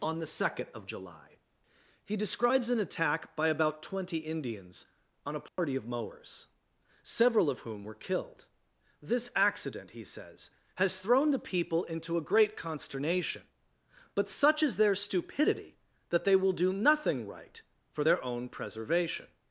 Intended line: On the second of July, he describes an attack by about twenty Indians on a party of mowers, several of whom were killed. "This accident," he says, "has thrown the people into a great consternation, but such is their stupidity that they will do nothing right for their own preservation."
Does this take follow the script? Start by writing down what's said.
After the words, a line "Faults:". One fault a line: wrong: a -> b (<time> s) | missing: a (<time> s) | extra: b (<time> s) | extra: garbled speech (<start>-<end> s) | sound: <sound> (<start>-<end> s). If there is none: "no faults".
On the second of July, he describes an attack by about twenty Indians on a party of mowers, several of whom were killed. "This accident," he says, "has thrown the people into a great consternation, but such is their stupidity that they will do nothing right for their own preservation."
Faults:
sound: dropout (5.5-5.6 s)